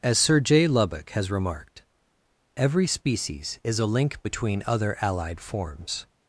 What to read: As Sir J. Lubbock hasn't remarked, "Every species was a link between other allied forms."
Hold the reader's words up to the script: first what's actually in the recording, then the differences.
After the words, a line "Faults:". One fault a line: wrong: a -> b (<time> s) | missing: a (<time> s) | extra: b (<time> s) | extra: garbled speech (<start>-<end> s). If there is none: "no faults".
As Sir J. Lubbock has remarked, "Every species is a link between other allied forms."
Faults:
wrong: hasn't -> has (1.1 s)
wrong: was -> is (3.7 s)